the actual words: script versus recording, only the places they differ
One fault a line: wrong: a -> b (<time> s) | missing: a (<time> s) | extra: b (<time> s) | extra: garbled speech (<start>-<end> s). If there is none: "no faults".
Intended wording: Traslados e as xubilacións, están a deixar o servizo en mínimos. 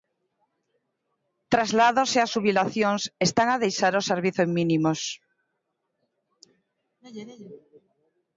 no faults